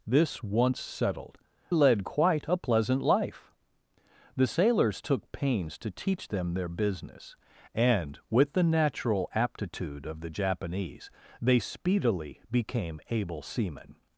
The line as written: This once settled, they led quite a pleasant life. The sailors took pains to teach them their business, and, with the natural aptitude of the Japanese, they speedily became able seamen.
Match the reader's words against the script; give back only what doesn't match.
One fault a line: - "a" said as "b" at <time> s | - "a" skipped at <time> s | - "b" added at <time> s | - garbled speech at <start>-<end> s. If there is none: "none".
- "they" skipped at 1.4 s